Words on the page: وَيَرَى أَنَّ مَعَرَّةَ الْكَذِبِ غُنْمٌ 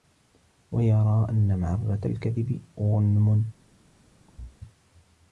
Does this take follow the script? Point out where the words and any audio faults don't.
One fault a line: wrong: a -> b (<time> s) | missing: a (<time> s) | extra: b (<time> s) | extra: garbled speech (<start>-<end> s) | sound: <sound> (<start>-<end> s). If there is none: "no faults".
sound: thud (4.3-4.6 s)